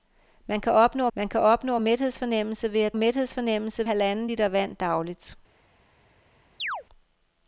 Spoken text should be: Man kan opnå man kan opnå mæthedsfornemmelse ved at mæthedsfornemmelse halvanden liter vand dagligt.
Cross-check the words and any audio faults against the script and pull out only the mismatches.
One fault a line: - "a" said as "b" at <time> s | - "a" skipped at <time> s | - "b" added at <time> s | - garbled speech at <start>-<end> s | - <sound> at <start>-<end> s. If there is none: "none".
- chirp at 6.6-6.8 s